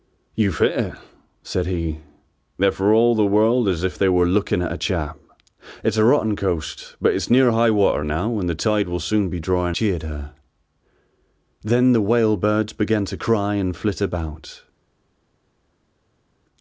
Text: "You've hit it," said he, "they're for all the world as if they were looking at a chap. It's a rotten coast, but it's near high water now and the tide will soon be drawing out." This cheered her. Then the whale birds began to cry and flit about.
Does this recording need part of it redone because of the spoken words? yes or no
yes